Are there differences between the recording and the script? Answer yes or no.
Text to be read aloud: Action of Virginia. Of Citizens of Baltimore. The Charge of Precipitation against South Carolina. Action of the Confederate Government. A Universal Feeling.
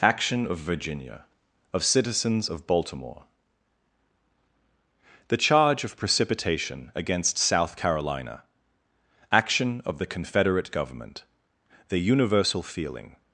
yes